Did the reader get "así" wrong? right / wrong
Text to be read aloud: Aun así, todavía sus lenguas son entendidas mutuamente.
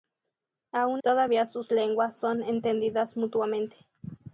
wrong